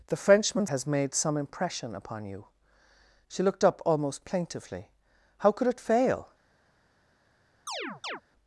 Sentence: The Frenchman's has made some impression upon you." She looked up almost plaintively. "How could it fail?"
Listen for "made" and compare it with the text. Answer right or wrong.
right